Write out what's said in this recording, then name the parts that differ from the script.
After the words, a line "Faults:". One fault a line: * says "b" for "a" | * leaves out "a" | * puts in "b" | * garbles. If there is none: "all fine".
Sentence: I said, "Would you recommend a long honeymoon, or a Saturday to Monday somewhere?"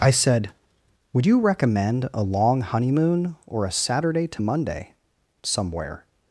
I said, "Would you recommend a long honeymoon, or a Saturday to Monday somewhere?"
Faults:
all fine